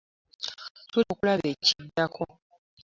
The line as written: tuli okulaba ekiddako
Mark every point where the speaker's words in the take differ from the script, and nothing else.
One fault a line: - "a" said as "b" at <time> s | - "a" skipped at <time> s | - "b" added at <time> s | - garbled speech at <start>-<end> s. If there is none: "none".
none